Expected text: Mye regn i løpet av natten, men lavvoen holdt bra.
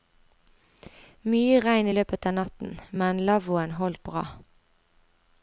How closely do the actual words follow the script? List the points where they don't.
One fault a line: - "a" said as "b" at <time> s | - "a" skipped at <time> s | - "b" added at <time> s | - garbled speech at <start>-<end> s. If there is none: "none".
none